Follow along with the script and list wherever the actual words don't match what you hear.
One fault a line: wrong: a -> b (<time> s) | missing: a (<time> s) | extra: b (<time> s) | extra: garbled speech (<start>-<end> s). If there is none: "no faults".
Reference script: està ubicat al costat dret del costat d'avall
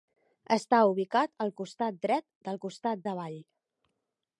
no faults